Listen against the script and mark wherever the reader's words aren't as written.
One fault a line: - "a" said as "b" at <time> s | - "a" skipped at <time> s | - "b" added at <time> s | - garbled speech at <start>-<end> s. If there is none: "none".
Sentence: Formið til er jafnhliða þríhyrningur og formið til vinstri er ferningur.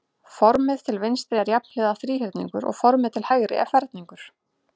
- "vinstri" added at 1.0 s
- "vinstri" said as "hægri" at 3.3 s